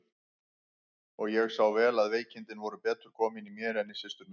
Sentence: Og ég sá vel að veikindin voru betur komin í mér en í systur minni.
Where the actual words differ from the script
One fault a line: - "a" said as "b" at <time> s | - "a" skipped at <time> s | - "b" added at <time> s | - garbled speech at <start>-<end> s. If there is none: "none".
none